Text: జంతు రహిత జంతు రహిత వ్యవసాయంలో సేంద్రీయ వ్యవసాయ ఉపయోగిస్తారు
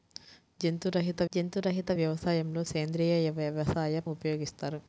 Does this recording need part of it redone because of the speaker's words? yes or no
no